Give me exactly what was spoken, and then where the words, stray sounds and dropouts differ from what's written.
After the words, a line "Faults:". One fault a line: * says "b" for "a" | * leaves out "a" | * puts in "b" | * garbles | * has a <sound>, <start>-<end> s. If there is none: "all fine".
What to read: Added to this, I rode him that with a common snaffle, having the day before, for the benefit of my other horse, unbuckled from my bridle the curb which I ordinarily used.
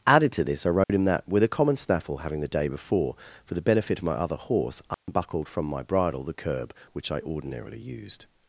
Added to this, I rode him that with a common snaffle, having the day before, for the benefit of my other horse, unbuckled from my bridle the curb which I ordinarily used.
Faults:
* has a dropout, 0.8-0.9 s
* has a dropout, 4.9-5.1 s